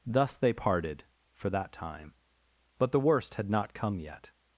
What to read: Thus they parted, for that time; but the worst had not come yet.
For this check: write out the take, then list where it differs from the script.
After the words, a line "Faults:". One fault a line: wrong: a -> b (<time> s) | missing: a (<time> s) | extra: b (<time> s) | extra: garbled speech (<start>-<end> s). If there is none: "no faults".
Thus they parted, for that time; but the worst had not come yet.
Faults:
no faults